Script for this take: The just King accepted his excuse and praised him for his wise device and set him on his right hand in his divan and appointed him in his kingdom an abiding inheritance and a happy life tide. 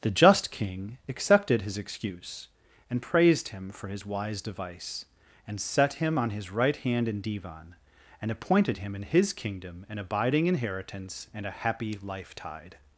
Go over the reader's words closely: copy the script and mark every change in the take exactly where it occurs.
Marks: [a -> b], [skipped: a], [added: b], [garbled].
The just King accepted his excuse and praised him for his wise device and set him on his right hand in [skipped: his] divan and appointed him in his kingdom an abiding inheritance and a happy life tide.